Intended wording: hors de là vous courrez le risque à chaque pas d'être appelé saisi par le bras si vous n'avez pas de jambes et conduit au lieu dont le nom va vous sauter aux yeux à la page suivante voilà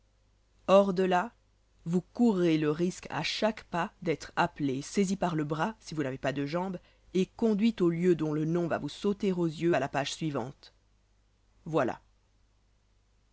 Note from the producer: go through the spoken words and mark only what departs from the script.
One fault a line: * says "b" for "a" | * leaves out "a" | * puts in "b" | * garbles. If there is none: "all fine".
all fine